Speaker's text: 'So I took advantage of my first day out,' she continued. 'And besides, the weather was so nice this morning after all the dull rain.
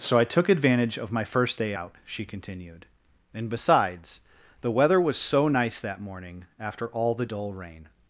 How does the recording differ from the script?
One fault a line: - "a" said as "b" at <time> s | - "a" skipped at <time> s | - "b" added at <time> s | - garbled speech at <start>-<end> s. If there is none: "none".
- "this" said as "that" at 5.8 s